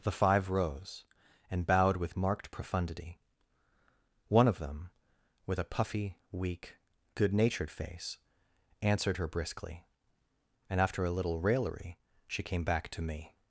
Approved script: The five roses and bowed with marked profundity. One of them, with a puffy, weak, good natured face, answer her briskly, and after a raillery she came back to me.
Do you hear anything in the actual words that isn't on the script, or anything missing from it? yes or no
yes